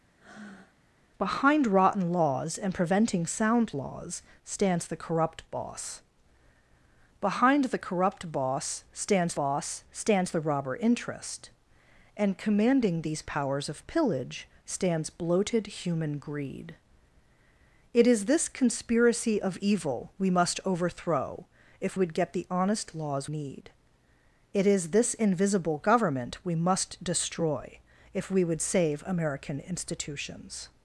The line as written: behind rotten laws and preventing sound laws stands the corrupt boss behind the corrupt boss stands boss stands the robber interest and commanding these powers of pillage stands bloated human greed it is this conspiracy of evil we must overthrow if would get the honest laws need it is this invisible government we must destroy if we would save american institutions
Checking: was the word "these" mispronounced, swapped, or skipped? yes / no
no